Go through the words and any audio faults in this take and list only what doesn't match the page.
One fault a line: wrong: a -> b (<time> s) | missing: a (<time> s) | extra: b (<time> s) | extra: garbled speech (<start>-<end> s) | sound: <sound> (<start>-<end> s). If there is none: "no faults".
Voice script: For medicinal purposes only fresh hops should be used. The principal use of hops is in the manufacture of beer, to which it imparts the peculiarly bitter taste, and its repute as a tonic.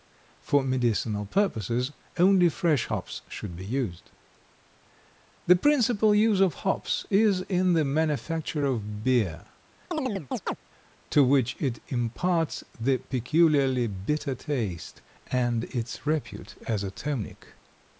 sound: chirp (9.9-10.6 s)